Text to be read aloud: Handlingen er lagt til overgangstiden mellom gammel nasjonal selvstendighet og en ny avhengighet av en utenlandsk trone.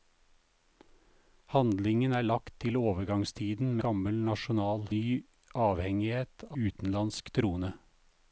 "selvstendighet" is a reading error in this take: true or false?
true